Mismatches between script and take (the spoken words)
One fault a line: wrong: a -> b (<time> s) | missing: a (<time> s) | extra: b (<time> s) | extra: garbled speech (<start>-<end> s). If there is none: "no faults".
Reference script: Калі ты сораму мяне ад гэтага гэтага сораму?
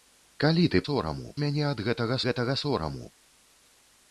no faults